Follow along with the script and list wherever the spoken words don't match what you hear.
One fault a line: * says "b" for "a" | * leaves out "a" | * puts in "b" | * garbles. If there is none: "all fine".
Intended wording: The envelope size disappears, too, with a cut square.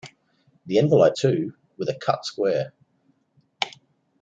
* leaves out "size disappears"